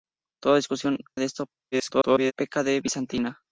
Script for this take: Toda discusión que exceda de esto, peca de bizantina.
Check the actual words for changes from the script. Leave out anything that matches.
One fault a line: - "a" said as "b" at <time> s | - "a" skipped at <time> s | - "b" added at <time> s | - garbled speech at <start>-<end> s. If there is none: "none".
- "que exceda" skipped at 1.0 s
- garbled speech at 1.7-2.3 s